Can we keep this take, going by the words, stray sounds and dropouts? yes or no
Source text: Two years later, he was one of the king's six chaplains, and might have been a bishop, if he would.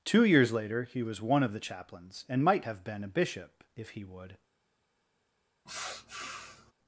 no